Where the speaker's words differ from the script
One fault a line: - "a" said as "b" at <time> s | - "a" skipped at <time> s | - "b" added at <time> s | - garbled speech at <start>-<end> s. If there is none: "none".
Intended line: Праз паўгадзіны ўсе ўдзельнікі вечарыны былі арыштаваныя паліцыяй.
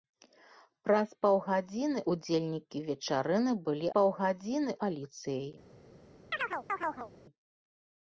- "ўсе" skipped at 2.0 s
- "арыштаваныя" said as "паўгадзіны" at 4.0 s